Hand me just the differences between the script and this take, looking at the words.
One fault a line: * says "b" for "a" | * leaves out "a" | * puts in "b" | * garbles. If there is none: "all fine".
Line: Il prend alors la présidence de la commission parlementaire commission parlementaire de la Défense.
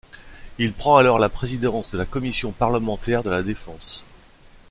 * leaves out "commission parlementaire"